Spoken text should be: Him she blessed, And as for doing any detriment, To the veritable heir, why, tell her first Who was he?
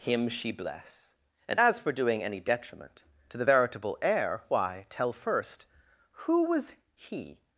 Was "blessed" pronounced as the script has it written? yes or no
no